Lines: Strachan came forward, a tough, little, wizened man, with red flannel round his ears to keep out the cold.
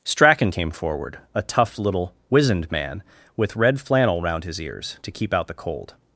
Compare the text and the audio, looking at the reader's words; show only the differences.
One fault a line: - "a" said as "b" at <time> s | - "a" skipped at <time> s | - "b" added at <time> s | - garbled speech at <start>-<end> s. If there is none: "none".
none